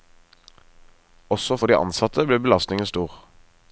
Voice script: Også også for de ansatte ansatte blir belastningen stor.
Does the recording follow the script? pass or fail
fail